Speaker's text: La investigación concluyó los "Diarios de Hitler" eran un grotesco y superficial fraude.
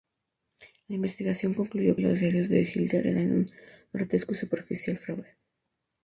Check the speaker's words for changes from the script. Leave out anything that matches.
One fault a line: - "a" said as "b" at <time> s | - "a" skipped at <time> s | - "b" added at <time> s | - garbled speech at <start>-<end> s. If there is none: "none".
none